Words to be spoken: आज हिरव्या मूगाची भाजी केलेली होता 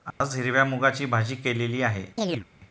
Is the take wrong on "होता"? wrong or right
wrong